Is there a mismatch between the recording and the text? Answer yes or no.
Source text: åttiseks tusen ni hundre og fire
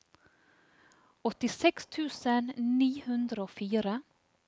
no